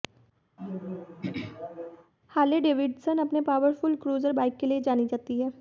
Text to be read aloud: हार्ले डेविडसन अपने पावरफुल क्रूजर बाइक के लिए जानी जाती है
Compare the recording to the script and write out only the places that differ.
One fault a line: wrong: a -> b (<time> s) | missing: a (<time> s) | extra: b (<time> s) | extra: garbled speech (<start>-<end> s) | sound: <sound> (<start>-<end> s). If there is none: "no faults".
sound: throat clearing (0.6-2.1 s)